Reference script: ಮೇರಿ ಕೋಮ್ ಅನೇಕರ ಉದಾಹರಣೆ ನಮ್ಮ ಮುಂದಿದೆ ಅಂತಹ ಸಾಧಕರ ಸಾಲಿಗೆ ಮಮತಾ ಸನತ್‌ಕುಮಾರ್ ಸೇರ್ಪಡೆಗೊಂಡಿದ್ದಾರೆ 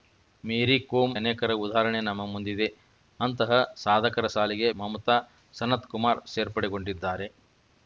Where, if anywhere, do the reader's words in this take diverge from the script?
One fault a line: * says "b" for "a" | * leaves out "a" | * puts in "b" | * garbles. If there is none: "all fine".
all fine